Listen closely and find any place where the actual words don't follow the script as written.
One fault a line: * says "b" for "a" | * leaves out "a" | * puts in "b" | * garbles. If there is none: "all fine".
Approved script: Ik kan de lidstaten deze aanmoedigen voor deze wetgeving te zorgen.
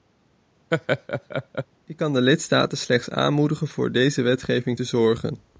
* says "slechts" for "deze"